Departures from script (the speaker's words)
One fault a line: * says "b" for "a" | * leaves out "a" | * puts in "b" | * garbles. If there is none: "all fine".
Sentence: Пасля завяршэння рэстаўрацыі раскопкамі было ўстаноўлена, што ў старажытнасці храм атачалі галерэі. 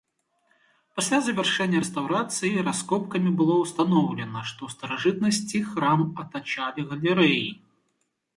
all fine